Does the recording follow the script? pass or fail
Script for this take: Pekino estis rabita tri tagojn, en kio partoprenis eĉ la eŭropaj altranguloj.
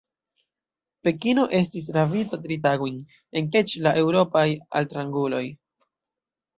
fail